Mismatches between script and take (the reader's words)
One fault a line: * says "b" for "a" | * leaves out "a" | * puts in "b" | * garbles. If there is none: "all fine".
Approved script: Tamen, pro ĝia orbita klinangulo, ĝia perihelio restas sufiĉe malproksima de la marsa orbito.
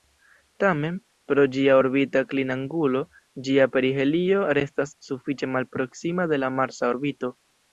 all fine